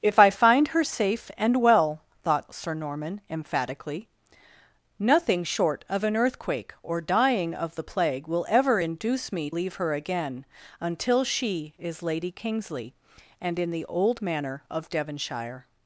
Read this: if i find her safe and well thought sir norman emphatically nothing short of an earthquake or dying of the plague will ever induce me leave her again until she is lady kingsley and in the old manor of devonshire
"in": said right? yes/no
yes